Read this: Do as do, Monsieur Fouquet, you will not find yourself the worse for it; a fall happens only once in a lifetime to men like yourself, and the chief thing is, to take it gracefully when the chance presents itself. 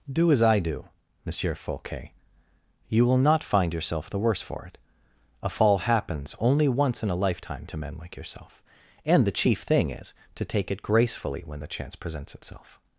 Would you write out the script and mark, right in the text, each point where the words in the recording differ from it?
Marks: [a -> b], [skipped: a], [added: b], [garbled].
Do as [added: I] do, Monsieur Fouquet, you will not find yourself the worse for it; a fall happens only once in a lifetime to men like yourself, and the chief thing is, to take it gracefully when the chance presents itself.